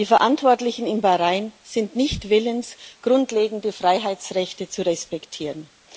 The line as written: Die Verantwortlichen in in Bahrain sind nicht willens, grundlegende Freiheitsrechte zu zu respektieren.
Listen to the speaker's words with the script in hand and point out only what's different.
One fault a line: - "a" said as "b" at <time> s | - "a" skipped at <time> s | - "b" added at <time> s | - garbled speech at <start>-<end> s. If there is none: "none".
- "in" skipped at 1.0 s
- "zu" skipped at 4.9 s